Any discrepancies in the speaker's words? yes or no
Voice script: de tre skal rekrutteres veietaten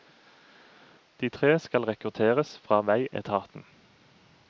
yes